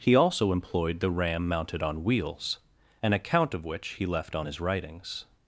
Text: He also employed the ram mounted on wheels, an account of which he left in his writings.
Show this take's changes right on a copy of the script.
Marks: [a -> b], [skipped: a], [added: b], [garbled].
He also employed the ram mounted on wheels, an account of which he left [in -> on] his writings.